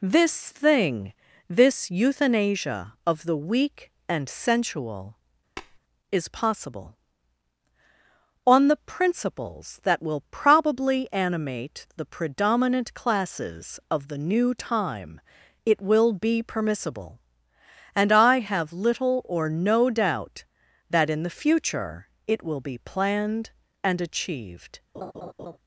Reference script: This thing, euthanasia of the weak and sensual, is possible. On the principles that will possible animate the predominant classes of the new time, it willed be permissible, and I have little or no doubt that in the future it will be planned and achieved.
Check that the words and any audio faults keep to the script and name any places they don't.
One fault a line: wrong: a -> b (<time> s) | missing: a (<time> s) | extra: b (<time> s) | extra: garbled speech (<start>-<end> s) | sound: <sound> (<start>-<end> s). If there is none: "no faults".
extra: this (1.5 s)
sound: tap (5.6-5.8 s)
wrong: possible -> probably (10.3 s)
wrong: willed -> will (15.8 s)
sound: laugh (24.9-25.6 s)